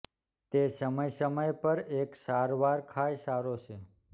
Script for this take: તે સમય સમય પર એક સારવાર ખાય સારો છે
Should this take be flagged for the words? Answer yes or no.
no